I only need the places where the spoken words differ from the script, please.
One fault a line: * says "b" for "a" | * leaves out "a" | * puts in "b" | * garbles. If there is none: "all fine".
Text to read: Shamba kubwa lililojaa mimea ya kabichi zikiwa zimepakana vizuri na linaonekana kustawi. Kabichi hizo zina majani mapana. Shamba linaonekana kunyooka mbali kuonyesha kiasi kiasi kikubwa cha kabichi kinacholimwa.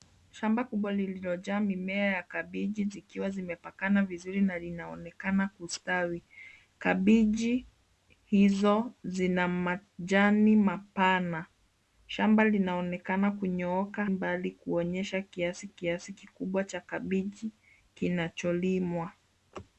all fine